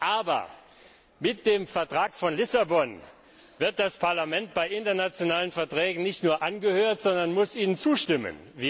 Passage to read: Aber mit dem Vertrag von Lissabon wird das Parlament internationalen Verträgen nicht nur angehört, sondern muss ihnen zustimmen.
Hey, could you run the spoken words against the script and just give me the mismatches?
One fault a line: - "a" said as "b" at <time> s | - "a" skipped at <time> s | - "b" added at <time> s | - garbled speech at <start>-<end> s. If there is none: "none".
- "bei" added at 4.5 s